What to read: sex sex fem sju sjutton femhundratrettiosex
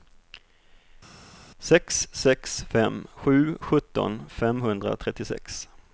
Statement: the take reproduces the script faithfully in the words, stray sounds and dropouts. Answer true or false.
true